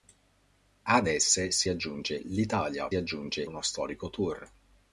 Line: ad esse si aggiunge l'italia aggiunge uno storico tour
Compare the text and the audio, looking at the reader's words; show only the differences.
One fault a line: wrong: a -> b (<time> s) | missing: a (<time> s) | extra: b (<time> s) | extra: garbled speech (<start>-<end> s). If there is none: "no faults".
no faults